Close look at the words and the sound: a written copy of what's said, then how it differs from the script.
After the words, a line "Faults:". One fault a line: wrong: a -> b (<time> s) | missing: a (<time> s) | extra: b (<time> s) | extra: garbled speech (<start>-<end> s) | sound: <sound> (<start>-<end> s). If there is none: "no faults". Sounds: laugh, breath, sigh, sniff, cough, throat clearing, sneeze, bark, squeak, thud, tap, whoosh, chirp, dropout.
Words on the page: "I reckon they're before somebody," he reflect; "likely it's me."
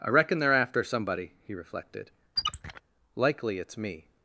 "I reckon they're after somebody," he reflected; "likely it's me."
Faults:
wrong: before -> after (0.5 s)
wrong: reflect -> reflected (1.5 s)
sound: squeak (2.4-2.8 s)